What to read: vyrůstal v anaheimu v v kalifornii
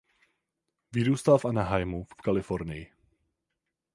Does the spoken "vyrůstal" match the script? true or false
true